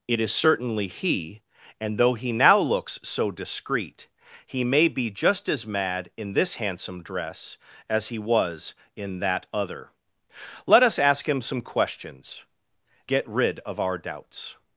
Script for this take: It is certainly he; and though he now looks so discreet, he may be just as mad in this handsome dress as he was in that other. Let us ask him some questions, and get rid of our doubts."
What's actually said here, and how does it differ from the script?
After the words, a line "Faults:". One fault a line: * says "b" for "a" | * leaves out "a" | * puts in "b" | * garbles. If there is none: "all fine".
It is certainly he; and though he now looks so discreet, he may be just as mad in this handsome dress as he was in that other. Let us ask him some questions, get rid of our doubts."
Faults:
* leaves out "and"